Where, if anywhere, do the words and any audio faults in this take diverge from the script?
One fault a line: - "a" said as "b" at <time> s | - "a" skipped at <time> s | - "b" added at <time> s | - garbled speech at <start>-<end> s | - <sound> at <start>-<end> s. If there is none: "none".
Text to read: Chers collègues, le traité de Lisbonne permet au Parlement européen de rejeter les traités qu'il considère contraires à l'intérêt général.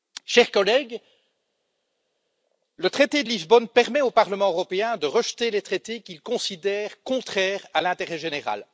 none